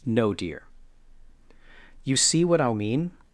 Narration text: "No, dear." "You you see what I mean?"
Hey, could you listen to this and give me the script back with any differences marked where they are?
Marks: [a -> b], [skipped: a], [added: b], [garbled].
"No, dear." "You [skipped: you] see what I mean?"